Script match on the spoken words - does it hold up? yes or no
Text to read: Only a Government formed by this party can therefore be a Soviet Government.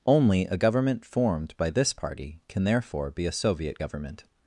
yes